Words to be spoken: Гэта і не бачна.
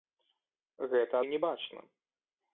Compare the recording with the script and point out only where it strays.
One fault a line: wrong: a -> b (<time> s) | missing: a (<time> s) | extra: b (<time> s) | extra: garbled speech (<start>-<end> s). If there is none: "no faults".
no faults